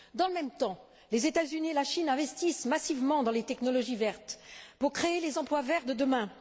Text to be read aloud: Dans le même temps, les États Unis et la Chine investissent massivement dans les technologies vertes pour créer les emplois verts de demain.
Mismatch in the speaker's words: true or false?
false